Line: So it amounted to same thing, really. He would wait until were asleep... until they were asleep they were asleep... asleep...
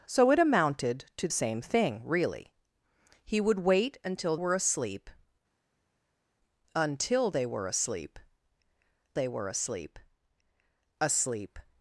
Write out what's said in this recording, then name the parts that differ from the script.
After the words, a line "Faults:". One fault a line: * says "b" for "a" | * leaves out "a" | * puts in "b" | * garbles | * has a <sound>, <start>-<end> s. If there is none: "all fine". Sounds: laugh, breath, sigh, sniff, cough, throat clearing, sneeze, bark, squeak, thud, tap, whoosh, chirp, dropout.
So it amounted to same thing, really. He would wait until were asleep... until they were asleep they were asleep... asleep...
Faults:
all fine